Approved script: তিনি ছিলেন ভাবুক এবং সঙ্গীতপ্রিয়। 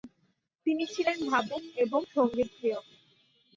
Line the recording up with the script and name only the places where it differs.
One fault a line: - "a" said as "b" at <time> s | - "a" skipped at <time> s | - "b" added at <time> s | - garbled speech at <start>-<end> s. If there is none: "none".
none